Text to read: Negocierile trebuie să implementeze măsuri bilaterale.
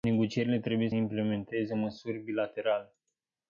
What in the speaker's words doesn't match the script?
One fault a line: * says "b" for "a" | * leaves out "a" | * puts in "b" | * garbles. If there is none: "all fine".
* leaves out "să"